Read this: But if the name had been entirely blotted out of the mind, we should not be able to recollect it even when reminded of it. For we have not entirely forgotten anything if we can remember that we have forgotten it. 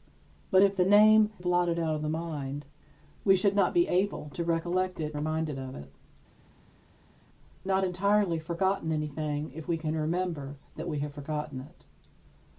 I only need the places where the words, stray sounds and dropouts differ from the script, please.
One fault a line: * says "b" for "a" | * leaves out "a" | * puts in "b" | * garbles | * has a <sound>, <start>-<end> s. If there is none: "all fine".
* leaves out "had been entirely"
* leaves out "even when"
* leaves out "For we have"